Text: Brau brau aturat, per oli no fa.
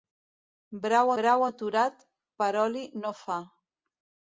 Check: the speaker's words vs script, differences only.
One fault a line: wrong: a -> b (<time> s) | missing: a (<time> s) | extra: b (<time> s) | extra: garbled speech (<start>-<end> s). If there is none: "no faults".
no faults